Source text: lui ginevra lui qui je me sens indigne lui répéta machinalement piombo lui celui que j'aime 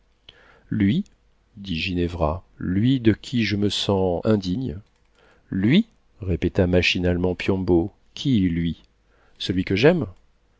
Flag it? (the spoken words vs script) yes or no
yes